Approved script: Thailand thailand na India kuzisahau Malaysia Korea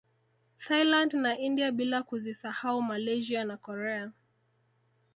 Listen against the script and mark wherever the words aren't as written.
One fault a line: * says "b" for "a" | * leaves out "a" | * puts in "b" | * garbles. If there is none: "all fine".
* leaves out "thailand"
* puts in "bila"
* puts in "na"